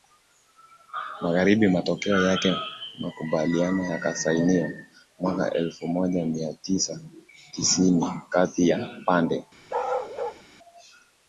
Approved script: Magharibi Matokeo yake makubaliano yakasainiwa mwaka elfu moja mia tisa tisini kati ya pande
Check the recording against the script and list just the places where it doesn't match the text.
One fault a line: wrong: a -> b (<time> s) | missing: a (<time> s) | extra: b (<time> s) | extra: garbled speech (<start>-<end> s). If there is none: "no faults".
no faults